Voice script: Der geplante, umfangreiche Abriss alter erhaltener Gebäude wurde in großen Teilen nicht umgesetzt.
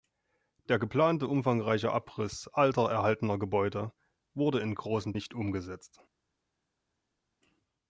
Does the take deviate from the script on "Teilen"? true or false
true